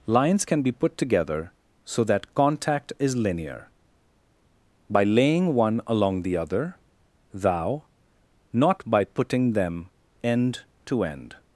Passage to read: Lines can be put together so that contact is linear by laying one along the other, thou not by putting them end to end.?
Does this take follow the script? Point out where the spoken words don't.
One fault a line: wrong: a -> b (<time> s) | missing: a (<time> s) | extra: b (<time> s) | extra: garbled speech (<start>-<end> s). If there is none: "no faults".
no faults